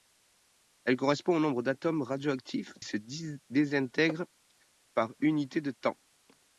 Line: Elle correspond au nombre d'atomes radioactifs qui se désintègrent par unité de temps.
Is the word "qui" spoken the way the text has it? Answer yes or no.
no